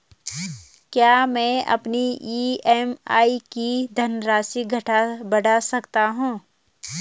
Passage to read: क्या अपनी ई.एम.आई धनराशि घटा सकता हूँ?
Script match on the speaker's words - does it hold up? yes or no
no